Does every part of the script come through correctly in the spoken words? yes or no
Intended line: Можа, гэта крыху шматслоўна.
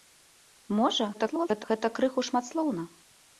no